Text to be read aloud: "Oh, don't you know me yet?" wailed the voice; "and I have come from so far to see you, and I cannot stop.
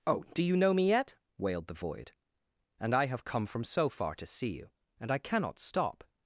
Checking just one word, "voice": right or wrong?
wrong